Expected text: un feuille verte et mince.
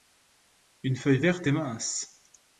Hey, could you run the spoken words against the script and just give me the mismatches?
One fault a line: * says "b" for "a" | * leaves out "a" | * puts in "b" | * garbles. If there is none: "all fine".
* says "une" for "un"